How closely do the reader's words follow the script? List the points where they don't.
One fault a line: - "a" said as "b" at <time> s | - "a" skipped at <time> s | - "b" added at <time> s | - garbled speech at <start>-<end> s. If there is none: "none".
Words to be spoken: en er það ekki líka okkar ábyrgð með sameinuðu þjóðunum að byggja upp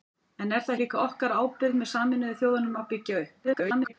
- "ekki" skipped at 0.7 s
- garbled speech at 3.4-3.9 s